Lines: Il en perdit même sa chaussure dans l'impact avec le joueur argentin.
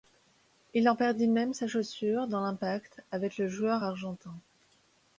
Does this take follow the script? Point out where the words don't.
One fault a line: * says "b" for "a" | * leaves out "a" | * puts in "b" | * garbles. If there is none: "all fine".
all fine